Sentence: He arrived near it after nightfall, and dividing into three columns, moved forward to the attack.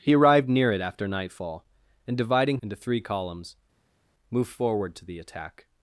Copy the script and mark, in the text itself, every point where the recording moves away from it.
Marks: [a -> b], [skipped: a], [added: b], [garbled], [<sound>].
He arrived near it after nightfall, and dividing into three columns, moved forward to the attack.